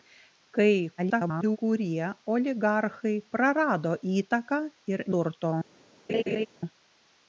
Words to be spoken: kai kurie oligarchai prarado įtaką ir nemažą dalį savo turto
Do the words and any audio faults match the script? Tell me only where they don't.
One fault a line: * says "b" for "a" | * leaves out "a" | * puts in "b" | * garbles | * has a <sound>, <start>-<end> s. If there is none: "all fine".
* garbles
* leaves out "nemažą dalį savo"
* has a laugh, 6.1-6.5 s